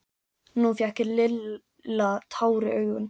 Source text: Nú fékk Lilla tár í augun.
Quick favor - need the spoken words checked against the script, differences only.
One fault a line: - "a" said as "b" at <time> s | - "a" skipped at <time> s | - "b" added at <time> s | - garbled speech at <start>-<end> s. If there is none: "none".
none